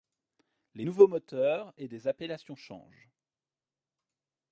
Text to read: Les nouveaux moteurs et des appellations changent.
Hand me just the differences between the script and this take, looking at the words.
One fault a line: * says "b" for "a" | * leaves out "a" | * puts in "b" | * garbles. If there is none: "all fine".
all fine